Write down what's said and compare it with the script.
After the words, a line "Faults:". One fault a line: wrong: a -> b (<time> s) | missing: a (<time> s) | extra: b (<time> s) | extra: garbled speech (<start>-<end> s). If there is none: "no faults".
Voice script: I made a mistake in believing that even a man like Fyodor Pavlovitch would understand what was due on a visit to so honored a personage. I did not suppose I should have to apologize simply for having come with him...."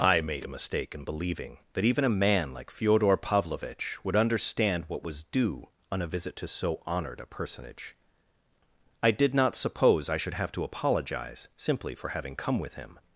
I made a mistake in believing that even a man like Fyodor Pavlovitch would understand what was due on a visit to so honored a personage. I did not suppose I should have to apologize simply for having come with him...."
Faults:
no faults